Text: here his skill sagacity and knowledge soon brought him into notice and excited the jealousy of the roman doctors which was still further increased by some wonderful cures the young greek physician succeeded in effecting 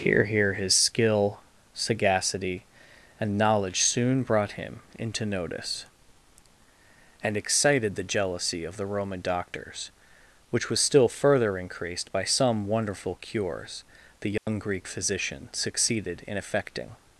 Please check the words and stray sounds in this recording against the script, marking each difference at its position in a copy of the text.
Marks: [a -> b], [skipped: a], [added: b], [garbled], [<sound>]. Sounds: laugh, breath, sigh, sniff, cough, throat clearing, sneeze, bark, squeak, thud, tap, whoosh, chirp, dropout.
here [added: here] his skill sagacity and knowledge soon brought him into notice and excited the jealousy of the roman doctors which was still further increased by some wonderful cures the young [dropout] greek physician succeeded in effecting